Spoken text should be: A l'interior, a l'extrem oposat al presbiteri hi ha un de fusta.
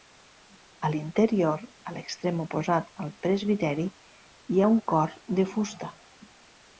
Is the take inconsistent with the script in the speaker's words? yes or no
yes